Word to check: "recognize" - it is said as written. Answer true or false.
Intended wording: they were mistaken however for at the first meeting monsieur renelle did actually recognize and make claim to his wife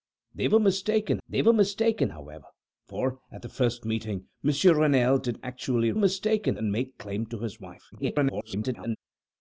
false